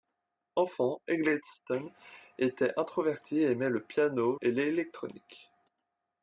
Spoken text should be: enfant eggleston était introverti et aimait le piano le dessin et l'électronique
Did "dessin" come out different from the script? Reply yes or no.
yes